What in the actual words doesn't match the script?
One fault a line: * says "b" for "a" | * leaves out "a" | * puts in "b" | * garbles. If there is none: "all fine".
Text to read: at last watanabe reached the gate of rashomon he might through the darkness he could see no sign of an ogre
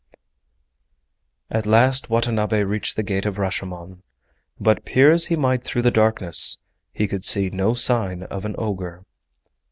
* puts in "but peer as"